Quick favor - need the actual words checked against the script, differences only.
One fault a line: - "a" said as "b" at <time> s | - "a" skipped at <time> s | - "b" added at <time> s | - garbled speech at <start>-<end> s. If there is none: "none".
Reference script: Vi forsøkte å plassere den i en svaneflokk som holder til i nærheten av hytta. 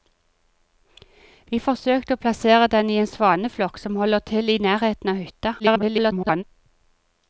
- garbled speech at 5.6-6.4 s